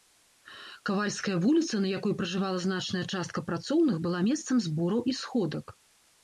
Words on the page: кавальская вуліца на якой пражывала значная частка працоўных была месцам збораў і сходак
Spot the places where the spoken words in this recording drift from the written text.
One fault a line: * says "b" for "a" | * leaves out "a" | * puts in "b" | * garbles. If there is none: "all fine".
all fine